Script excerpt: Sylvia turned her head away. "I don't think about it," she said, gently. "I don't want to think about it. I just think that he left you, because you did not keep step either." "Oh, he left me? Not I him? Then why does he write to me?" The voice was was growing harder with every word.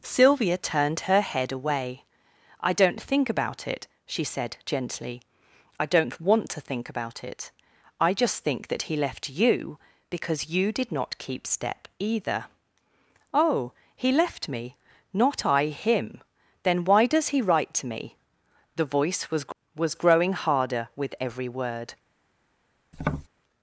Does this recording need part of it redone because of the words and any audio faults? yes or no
yes